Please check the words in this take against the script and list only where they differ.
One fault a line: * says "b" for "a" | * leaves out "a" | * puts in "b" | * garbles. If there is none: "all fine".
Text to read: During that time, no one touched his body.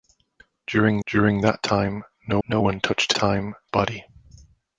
* puts in "during"
* puts in "no"
* says "time" for "his"